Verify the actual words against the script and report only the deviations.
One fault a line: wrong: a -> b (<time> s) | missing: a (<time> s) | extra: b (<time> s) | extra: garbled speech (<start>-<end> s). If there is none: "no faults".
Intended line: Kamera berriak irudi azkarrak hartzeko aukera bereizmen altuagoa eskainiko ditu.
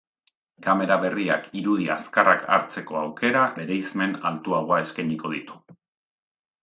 no faults